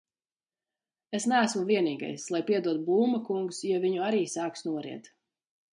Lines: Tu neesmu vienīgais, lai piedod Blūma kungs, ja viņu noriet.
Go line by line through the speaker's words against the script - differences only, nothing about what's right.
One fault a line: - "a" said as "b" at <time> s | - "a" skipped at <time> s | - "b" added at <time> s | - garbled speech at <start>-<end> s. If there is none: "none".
- "Tu" said as "Es" at 1.2 s
- "arī sāks" added at 4.1 s